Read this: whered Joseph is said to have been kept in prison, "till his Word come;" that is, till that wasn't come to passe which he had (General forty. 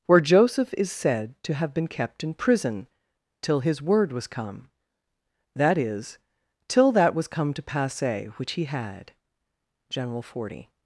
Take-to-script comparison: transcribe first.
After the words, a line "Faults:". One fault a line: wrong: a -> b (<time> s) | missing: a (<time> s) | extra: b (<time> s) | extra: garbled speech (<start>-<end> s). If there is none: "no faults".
where Joseph is said to have been kept in prison, "till his Word was come;" that is, till that was come to passe which he had (General forty.
Faults:
wrong: whered -> where (0.1 s)
extra: was (4.1 s)
wrong: wasn't -> was (7.1 s)